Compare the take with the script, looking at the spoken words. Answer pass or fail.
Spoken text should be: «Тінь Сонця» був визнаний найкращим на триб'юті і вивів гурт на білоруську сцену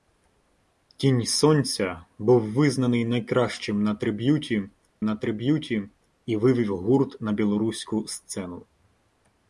fail